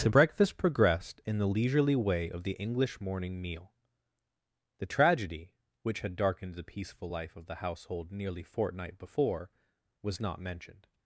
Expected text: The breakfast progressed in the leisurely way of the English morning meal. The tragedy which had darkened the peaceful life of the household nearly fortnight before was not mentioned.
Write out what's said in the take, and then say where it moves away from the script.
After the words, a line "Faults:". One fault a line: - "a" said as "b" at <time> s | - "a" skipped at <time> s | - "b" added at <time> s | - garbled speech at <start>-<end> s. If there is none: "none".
The breakfast progressed in the leisurely way of the English morning meal. The tragedy which had darkened the peaceful life of the household nearly fortnight before was not mentioned.
Faults:
none